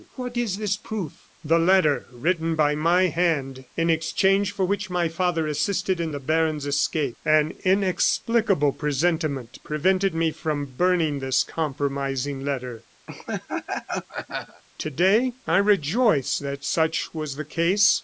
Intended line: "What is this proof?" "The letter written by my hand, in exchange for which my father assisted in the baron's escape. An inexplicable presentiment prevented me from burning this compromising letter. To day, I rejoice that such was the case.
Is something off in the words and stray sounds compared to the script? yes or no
yes